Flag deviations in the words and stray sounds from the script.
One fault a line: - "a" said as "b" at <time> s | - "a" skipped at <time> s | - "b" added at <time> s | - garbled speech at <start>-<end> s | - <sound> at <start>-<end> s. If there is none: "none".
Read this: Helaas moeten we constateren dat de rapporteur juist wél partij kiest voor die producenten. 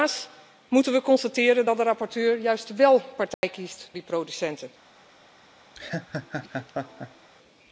- dropout at 3.3-3.4 s
- "voor" skipped at 3.9 s
- laugh at 5.7-7.3 s